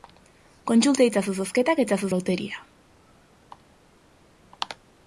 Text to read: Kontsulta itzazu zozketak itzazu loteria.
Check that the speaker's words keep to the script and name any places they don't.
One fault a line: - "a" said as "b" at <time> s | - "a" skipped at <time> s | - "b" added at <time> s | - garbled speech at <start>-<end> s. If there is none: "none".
none